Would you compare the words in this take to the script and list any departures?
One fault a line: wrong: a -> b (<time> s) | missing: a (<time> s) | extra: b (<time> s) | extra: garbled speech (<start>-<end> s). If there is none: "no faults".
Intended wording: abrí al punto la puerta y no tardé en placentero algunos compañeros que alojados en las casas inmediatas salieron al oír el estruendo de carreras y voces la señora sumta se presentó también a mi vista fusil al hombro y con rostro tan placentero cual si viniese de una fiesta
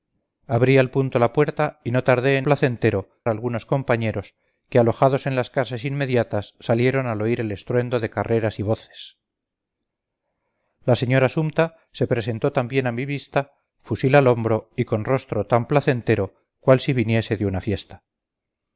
no faults